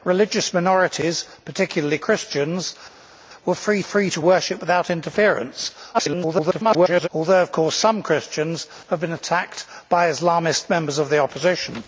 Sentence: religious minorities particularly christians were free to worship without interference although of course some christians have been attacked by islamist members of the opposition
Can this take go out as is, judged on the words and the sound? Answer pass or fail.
fail